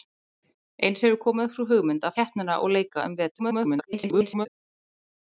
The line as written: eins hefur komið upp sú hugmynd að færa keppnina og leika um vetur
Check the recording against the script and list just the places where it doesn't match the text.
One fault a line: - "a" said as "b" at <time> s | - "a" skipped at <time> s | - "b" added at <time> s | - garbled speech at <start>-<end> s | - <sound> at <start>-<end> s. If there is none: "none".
- "færa" skipped at 2.2 s
- garbled speech at 3.4-4.5 s